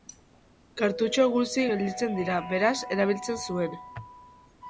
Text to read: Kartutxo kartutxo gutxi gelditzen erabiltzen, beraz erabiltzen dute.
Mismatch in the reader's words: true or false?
true